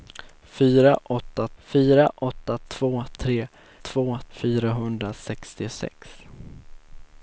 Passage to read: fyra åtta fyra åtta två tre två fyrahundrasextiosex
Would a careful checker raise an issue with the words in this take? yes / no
no